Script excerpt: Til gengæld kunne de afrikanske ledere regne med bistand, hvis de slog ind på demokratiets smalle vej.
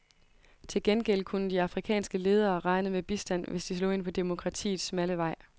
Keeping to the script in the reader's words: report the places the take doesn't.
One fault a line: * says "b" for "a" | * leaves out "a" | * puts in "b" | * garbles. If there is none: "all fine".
all fine